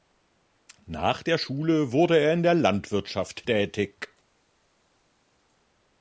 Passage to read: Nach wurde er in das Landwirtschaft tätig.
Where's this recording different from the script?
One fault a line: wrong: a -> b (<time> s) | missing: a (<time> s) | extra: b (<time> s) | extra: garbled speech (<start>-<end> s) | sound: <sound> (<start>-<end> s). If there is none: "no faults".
extra: der Schule (1.2 s)
wrong: das -> der (2.4 s)